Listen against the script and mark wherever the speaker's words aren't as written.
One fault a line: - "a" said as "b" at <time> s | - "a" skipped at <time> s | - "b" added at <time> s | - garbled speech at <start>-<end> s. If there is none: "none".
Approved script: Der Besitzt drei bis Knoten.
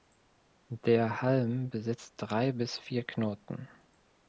- "Halm" added at 1.2 s
- "vier" added at 2.8 s